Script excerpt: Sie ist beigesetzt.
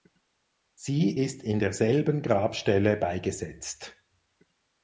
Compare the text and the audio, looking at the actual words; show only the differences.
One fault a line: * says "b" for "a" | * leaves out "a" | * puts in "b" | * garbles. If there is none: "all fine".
* puts in "in derselben Grabstelle"